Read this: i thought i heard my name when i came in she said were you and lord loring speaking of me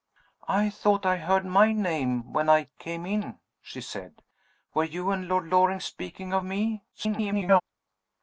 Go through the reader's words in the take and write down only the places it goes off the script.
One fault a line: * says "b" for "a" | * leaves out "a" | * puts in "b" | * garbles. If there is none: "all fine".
* garbles